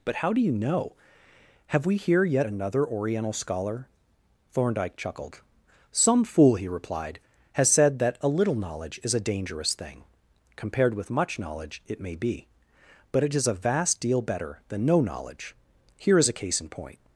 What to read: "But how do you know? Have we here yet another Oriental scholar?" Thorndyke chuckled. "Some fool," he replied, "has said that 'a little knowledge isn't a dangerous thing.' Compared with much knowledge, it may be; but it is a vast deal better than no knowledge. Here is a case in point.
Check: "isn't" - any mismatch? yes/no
yes